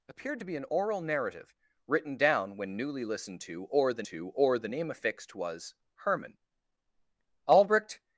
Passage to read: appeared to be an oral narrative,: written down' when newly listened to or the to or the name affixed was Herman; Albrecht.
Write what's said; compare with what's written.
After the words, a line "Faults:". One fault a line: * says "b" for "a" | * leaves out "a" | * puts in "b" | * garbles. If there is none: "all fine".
appeared to be an oral narrative,: written down' when newly listened to or the to or the name affixed was Herman; Albrecht.
Faults:
all fine